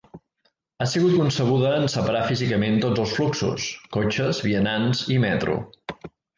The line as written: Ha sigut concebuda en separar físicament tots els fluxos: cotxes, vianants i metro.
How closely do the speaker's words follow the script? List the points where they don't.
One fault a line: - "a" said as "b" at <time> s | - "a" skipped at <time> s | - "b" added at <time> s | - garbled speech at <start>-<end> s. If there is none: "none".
none